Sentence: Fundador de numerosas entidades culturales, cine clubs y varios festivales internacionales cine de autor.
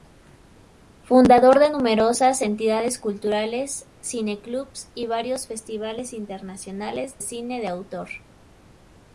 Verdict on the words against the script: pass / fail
pass